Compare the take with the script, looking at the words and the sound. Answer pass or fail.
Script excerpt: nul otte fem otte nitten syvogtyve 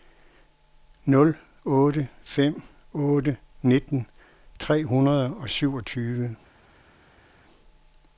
fail